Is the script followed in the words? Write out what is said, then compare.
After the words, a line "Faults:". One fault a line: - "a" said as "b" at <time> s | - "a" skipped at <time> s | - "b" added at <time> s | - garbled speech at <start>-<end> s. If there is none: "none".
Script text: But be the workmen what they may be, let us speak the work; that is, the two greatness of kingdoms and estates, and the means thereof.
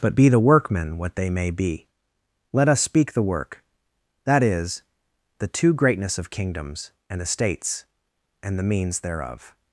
But be the workmen what they may be, let us speak the work; that is, the two greatness of kingdoms and estates, and the means thereof.
Faults:
none